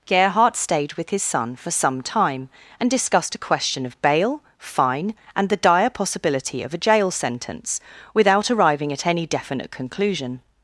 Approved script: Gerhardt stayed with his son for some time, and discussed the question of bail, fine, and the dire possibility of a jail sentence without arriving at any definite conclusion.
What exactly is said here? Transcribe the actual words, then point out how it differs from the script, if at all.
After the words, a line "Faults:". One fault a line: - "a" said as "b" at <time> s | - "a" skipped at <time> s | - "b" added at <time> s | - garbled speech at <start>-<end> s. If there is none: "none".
Gerhardt stayed with his son for some time, and discussed a question of bail, fine, and the dire possibility of a jail sentence without arriving at any definite conclusion.
Faults:
- "the" said as "a" at 3.4 s